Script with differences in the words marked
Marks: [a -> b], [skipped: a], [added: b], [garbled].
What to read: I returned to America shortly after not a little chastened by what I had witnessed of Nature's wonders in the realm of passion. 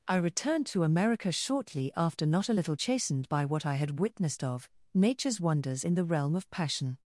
I returned to America shortly after not a little chastened by what I had witnessed of Nature's wonders in the realm of passion.